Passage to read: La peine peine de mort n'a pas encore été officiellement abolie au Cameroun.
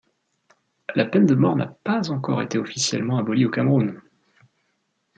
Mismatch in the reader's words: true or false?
true